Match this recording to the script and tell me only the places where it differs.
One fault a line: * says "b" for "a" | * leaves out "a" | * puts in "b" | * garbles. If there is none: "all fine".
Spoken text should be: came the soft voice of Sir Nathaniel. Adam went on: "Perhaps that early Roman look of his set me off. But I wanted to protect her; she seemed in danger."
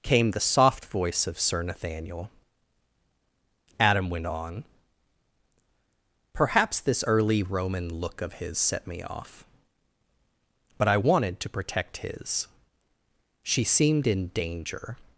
* says "this" for "that"
* says "his" for "her"